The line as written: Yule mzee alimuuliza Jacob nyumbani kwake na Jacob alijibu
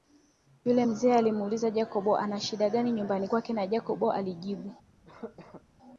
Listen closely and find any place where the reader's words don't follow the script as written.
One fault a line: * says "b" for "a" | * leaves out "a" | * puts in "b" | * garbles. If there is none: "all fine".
* puts in "ana shida gani"